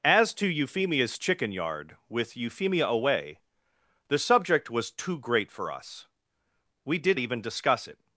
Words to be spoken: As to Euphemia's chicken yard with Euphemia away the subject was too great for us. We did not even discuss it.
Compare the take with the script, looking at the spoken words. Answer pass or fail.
fail